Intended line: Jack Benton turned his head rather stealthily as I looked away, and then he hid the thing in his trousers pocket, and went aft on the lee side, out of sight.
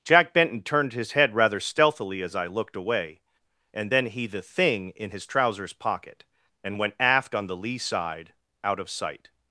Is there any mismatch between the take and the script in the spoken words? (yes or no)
yes